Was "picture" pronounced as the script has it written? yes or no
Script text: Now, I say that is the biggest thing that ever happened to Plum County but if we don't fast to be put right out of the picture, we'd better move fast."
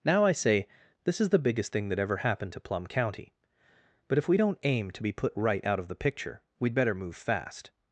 yes